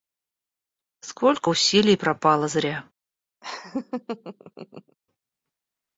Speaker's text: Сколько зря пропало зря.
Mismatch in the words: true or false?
true